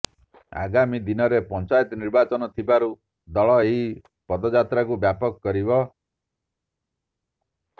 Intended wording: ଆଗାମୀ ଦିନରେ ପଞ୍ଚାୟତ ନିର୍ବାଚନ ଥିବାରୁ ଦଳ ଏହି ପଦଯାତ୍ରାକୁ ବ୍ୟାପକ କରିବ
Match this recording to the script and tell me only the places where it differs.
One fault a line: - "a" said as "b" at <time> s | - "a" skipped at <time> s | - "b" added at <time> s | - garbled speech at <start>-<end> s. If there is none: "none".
none